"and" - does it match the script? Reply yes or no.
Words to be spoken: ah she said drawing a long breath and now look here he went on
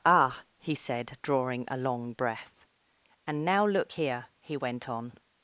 yes